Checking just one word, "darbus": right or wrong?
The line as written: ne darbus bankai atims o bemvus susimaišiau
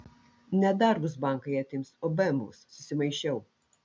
right